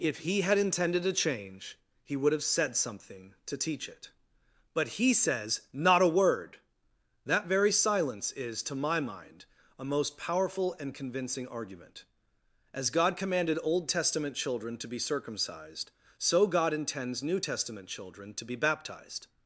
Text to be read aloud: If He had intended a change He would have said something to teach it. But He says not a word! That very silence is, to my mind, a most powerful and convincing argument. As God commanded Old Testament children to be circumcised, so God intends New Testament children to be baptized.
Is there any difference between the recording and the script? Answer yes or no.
no